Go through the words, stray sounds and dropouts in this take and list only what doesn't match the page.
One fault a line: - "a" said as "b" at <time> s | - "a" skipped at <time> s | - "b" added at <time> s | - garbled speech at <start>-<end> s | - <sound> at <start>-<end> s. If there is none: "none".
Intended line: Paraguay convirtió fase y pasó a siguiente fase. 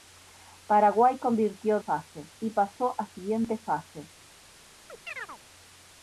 - chirp at 4.9-5.4 s